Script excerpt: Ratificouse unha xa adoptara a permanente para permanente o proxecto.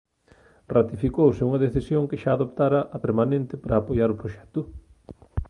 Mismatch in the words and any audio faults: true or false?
true